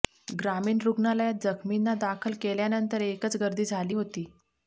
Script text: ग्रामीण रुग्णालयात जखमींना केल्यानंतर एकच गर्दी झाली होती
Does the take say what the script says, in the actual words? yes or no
no